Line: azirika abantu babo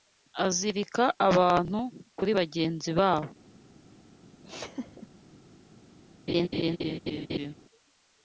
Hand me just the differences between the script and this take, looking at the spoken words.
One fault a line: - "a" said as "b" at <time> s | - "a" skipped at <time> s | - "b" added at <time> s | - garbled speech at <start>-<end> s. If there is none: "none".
- "kuri bagenzi" added at 2.2 s